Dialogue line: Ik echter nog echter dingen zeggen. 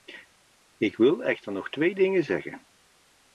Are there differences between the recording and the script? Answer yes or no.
yes